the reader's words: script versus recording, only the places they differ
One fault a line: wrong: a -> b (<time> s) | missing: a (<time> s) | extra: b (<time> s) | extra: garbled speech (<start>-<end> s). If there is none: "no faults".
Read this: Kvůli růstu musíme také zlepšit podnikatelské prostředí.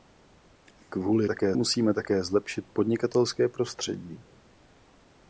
wrong: růstu -> také (1.3 s)